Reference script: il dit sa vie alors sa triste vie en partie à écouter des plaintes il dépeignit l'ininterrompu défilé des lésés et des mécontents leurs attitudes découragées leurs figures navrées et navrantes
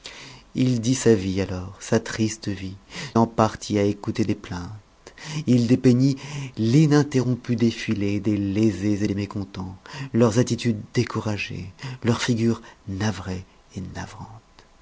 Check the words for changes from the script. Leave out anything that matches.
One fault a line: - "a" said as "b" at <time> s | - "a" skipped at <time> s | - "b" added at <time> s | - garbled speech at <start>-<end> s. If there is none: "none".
none